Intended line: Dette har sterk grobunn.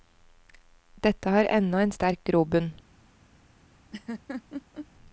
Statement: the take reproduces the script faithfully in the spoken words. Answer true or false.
false